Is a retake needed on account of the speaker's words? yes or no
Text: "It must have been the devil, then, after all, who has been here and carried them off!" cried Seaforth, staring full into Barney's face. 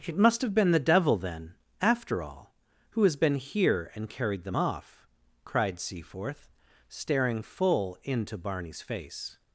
no